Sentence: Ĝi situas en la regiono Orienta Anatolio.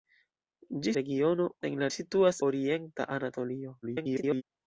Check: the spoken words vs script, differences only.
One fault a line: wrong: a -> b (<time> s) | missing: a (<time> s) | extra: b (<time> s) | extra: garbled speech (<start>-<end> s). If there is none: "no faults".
wrong: situas -> regiono (1.0 s)
wrong: regiono -> situas (1.9 s)
extra: garbled speech (3.8-4.4 s)